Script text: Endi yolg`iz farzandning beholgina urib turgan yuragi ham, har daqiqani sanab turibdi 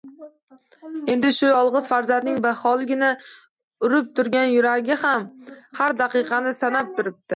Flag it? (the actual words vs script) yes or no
yes